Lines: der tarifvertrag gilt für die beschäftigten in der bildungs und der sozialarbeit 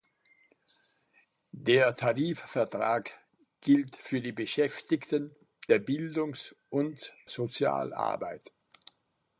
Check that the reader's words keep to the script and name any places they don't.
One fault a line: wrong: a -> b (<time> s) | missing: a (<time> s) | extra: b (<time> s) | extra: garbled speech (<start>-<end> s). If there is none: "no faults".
missing: in (5.3 s)
missing: der (7.1 s)